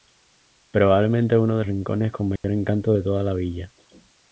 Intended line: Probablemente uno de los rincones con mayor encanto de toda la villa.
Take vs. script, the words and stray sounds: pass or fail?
fail